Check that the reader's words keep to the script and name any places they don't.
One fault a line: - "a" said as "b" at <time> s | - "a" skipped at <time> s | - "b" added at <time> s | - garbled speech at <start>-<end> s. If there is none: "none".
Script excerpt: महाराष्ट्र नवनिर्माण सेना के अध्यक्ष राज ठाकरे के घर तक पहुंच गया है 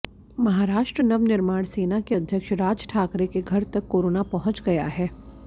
- "कोरोना" added at 3.9 s